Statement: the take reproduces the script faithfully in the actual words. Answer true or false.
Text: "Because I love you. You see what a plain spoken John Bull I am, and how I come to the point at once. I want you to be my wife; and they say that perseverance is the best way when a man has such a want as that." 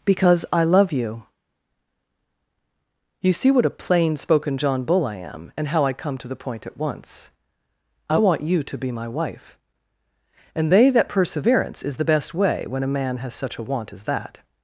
false